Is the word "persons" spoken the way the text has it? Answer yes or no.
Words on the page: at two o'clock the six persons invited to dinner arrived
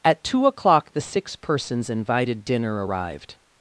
yes